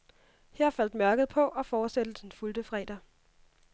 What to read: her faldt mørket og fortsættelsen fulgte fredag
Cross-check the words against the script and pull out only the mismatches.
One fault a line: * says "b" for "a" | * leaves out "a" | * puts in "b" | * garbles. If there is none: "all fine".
* puts in "på"